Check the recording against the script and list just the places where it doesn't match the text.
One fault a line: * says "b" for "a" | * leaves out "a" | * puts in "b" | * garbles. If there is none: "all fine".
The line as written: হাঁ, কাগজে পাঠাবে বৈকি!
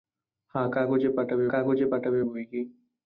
* puts in "কাগজে পাঠাবে"